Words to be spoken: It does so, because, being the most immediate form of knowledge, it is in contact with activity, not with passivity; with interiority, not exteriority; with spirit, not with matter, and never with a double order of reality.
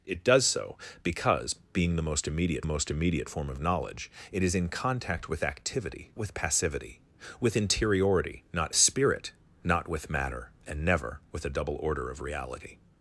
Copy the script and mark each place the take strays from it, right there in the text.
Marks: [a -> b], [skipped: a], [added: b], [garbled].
It does so, because, being the most immediate [added: most immediate] form of knowledge, it is in contact with activity, [skipped: not] with passivity; with interiority, not [skipped: exteriority; with] spirit, not with matter, and never with a double order of reality.